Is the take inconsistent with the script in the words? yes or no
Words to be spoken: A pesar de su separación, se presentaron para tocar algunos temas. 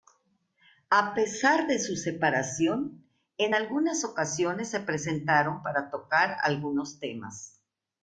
yes